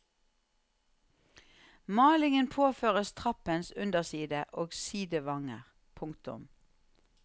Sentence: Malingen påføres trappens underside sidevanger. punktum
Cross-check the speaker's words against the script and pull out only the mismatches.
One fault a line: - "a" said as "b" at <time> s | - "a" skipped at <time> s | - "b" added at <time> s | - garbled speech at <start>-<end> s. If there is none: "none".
- "og" added at 4.5 s